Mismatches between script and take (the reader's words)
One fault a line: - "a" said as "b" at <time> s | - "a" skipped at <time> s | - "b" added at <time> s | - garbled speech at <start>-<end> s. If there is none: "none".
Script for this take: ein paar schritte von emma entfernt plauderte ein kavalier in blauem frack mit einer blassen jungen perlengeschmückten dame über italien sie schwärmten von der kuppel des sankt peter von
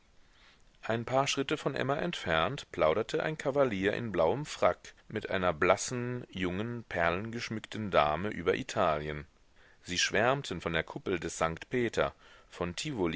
none